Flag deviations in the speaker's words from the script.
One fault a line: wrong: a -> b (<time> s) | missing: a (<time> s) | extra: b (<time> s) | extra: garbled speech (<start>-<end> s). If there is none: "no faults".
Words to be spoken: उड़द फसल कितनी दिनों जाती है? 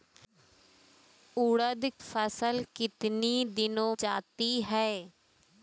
no faults